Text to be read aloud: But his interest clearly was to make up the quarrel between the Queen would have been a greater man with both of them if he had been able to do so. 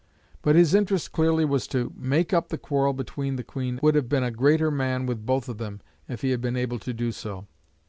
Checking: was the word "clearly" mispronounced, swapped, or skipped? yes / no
no